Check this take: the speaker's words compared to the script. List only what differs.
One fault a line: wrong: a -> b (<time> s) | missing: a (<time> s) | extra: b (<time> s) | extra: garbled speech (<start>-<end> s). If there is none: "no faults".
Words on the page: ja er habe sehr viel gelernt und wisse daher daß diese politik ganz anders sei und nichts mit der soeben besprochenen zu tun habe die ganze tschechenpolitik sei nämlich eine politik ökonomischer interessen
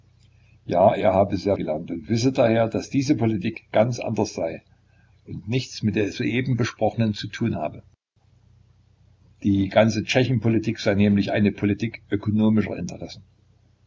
missing: viel (1.6 s)